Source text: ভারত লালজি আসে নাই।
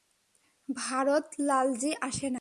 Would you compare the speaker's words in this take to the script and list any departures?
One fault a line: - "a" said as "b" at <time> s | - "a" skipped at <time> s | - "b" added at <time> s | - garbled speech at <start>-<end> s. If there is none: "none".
none